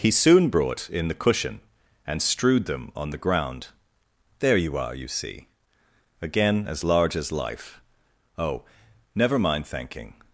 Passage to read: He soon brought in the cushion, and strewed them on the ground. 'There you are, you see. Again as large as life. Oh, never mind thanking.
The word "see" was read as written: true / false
true